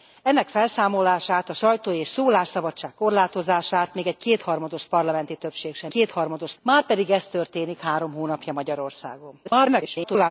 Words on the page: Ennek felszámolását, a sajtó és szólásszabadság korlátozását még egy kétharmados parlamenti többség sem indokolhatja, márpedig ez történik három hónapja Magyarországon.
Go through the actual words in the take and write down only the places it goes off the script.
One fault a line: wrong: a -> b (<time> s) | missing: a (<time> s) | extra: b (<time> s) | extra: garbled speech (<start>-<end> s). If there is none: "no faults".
wrong: indokolhatja -> kétharmados (5.9 s)
extra: garbled speech (9.4-10.3 s)